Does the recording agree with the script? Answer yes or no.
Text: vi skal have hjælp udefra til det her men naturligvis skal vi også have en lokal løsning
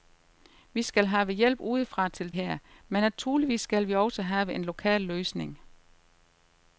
no